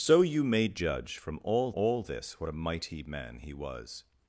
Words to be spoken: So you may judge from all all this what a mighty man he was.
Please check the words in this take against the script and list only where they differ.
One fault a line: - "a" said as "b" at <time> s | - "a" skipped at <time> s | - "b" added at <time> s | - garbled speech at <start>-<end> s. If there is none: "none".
none